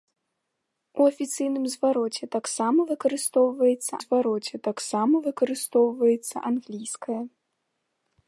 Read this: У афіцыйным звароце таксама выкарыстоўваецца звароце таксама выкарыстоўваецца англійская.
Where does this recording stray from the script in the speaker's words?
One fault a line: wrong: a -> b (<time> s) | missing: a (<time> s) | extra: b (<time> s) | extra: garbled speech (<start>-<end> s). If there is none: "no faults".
no faults